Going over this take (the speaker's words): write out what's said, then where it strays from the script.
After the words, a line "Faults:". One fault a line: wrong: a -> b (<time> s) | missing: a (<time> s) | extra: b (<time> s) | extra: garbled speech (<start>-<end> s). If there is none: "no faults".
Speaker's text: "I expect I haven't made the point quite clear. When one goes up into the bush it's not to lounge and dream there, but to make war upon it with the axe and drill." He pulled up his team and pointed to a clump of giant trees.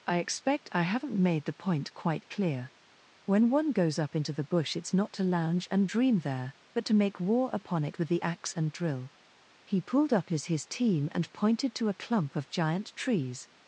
"I expect I haven't made the point quite clear. When one goes up into the bush it's not to lounge and dream there, but to make war upon it with the axe and drill." He pulled up his his team and pointed to a clump of giant trees.
Faults:
extra: his (10.5 s)